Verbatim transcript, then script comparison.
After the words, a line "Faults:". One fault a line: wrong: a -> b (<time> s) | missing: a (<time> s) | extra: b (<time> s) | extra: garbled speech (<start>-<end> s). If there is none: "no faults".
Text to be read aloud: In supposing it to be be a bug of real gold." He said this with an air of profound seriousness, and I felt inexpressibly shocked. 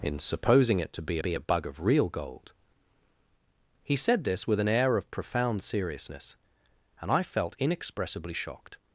In supposing it to be be a bug of real gold." He said this with an air of profound seriousness, and I felt inexpressibly shocked.
Faults:
no faults